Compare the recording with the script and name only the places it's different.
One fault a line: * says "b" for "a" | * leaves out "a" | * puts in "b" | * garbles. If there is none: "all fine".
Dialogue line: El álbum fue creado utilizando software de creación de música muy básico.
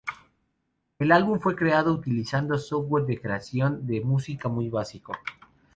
all fine